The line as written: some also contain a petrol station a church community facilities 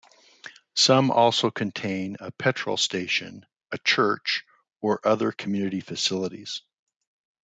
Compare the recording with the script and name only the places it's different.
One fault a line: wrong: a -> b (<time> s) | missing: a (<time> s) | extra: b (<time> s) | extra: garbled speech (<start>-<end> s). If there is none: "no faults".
extra: or other (4.8 s)